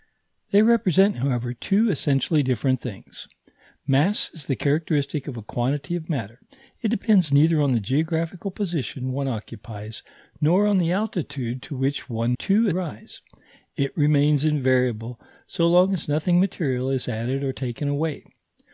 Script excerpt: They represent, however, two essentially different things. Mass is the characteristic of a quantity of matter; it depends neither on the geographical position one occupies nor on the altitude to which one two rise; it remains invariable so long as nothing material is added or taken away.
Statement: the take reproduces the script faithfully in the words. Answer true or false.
true